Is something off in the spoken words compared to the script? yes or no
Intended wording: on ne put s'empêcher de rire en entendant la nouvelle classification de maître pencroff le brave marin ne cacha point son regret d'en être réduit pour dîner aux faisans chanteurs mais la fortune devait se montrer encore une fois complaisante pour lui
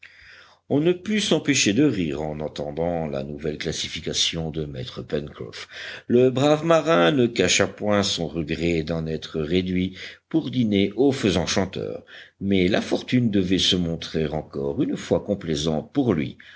no